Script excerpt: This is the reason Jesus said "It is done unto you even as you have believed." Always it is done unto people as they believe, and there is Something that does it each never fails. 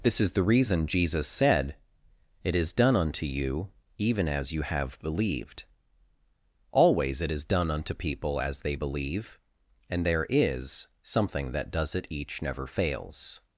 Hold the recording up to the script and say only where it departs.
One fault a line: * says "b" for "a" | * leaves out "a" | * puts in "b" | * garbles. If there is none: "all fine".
all fine